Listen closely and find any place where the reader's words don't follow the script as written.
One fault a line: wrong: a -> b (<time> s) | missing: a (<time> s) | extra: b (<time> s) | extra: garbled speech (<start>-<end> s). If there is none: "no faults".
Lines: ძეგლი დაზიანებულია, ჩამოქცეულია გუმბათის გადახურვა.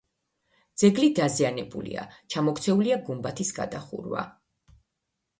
no faults